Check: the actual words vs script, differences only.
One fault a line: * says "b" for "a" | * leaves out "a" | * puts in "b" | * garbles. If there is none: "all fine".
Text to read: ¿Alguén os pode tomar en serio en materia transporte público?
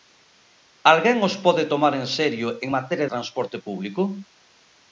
all fine